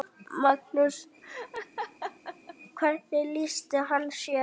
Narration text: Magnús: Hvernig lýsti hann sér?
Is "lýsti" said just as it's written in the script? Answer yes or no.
yes